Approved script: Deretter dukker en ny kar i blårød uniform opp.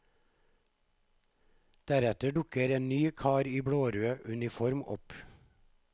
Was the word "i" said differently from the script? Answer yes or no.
no